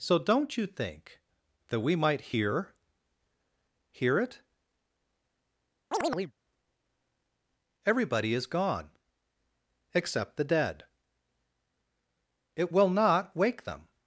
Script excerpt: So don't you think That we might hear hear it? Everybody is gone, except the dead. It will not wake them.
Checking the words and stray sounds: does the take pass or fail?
fail